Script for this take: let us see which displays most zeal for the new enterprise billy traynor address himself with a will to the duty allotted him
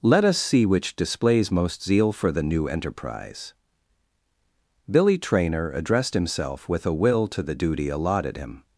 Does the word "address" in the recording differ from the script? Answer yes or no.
yes